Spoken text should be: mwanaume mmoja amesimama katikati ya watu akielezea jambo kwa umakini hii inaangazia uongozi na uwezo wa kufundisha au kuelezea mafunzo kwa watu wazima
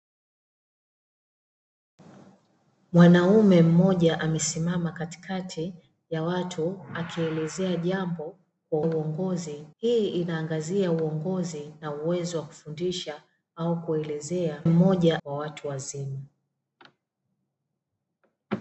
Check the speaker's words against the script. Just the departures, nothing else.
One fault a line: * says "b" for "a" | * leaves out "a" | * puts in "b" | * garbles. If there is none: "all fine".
* says "uongozi" for "umakini"
* says "mmoja" for "mafunzo"